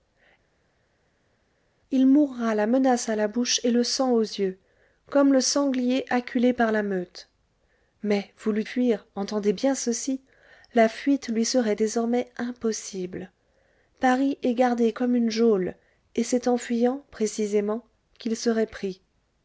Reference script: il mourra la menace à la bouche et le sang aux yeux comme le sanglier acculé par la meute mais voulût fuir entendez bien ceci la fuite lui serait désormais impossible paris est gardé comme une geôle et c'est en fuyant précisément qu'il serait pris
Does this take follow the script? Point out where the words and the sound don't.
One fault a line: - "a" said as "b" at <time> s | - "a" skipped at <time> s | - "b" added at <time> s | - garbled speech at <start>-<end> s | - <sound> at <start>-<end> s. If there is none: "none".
none